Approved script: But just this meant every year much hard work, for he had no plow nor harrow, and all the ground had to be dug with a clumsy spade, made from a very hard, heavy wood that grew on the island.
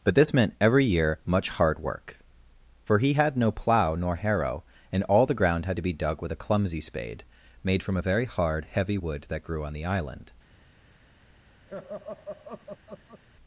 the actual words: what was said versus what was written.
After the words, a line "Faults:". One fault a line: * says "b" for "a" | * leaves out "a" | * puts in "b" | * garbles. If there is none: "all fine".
But this meant every year much hard work, for he had no plow nor harrow, and all the ground had to be dug with a clumsy spade, made from a very hard, heavy wood that grew on the island.
Faults:
* leaves out "just"